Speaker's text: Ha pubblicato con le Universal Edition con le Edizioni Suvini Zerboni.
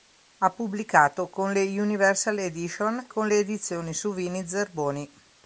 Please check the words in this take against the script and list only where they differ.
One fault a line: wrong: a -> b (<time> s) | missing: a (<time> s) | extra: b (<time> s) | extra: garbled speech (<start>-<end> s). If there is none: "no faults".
no faults